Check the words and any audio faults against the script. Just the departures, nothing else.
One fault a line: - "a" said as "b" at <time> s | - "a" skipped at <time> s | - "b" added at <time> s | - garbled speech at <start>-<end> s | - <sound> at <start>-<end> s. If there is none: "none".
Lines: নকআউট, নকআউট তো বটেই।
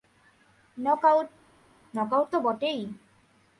none